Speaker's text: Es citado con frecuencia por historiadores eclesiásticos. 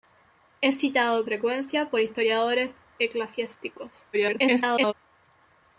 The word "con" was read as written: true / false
false